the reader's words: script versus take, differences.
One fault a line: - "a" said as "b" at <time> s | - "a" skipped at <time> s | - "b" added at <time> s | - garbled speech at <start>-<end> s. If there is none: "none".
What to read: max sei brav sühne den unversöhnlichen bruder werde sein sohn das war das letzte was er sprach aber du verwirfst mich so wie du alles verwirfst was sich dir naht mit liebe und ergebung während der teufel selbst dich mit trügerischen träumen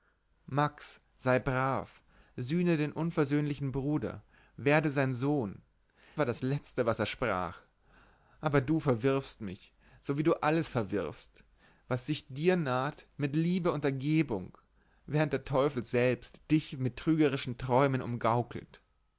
- "das" skipped at 5.6 s